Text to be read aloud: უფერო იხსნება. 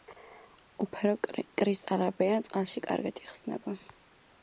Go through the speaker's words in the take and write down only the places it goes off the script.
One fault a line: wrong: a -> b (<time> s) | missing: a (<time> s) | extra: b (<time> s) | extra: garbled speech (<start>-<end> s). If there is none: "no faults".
extra: კრისტალებია წყალში კარგად (1.6 s)